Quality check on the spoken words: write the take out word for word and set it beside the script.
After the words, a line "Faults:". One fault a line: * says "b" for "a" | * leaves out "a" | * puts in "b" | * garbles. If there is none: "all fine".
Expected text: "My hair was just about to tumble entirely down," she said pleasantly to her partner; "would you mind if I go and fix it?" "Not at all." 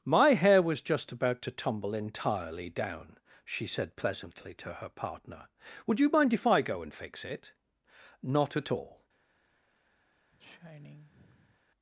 "My hair was just about to tumble entirely down," she said pleasantly to her partner; "would you mind if I go and fix it?" "Not at all."
Faults:
all fine